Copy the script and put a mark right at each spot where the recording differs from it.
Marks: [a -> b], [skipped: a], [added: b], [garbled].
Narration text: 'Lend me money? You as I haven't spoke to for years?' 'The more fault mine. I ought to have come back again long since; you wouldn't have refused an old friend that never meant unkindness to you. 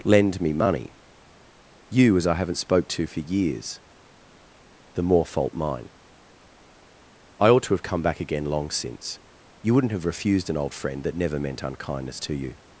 'Lend me money? You as I haven't spoke to for years?' 'The more fault mine. I ought to have come back again long since; you wouldn't have refused an old friend that never meant unkindness to you.